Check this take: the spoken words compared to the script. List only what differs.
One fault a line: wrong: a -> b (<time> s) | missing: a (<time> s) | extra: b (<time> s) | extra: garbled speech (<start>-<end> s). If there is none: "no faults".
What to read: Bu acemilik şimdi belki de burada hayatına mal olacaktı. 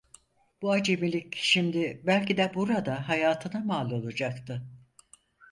no faults